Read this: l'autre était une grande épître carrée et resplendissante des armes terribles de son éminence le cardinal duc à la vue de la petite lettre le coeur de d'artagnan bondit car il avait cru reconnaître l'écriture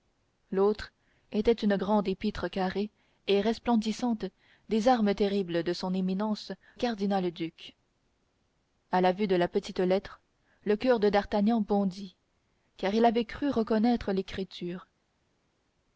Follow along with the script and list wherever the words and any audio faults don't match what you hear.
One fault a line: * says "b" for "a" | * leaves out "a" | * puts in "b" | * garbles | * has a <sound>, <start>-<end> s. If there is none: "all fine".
* leaves out "le"